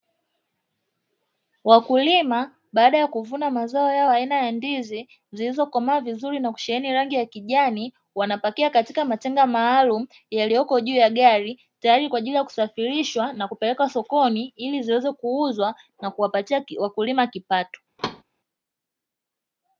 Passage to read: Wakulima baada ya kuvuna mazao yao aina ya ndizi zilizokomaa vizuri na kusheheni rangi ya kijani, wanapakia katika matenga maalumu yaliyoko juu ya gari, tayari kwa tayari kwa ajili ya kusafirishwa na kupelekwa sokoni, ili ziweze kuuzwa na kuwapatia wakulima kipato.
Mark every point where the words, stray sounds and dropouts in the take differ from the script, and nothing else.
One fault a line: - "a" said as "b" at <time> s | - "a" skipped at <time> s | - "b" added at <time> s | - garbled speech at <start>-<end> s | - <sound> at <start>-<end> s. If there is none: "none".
- "tayari kwa" skipped at 12.2 s
- thud at 18.0-18.2 s